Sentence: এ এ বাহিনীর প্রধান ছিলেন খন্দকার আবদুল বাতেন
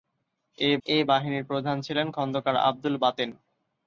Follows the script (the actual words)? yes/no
yes